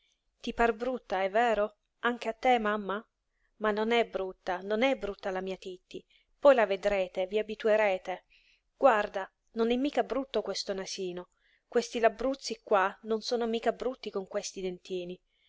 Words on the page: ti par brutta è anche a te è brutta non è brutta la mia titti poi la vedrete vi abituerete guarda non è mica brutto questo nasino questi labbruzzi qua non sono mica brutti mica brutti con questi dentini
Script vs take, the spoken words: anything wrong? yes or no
yes